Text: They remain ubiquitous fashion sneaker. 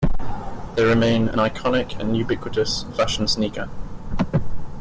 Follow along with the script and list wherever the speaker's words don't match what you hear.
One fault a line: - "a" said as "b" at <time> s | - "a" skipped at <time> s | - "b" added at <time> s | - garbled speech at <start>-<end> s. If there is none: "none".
- "an iconic and" added at 1.3 s